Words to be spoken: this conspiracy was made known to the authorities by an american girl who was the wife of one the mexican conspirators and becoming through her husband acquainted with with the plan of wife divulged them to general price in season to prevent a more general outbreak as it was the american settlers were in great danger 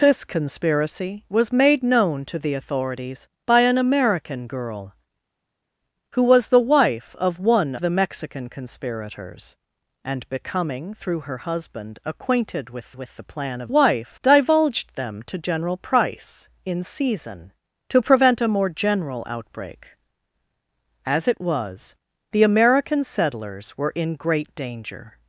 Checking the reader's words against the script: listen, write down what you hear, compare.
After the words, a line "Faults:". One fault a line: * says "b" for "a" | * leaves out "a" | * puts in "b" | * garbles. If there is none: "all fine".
this conspiracy was made known to the authorities by an american girl who was the wife of one the mexican conspirators and becoming through her husband acquainted with with the plan of wife divulged them to general price in season to prevent a more general outbreak as it was the american settlers were in great danger
Faults:
all fine